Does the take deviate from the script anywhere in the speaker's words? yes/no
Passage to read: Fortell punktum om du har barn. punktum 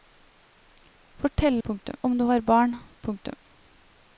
no